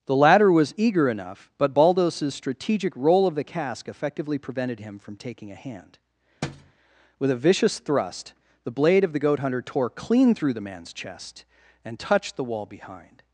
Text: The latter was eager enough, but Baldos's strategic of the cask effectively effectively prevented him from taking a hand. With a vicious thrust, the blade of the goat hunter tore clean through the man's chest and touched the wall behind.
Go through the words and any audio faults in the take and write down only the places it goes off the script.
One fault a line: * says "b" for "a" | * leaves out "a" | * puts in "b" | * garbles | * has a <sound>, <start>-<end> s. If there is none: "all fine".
* puts in "roll"
* leaves out "effectively"
* has a thud, 6.4-6.7 s